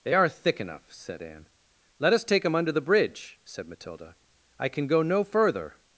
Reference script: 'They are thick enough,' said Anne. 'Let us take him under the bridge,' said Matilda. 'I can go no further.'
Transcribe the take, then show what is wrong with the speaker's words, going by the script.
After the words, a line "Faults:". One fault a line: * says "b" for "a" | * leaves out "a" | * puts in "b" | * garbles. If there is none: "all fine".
'They are thick enough,' said Anne. 'Let us take him under the bridge,' said Matilda. 'I can go no further.'
Faults:
all fine